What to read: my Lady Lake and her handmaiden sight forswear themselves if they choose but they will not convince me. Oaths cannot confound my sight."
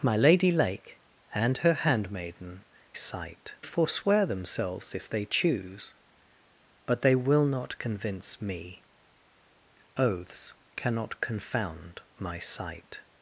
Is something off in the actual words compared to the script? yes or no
no